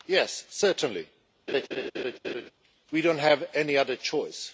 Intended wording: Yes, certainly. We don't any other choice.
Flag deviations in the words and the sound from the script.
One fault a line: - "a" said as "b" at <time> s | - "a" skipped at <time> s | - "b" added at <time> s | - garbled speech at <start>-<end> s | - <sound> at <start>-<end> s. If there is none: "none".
- laugh at 1.5-2.5 s
- "have" added at 3.2 s